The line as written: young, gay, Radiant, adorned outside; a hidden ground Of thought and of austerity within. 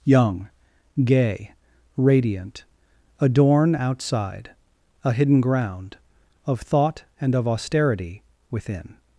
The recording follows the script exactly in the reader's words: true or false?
false